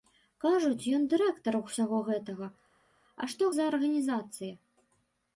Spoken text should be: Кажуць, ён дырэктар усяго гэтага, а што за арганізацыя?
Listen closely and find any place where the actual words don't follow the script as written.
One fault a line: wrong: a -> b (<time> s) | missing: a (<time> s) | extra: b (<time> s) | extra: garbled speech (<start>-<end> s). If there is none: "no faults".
no faults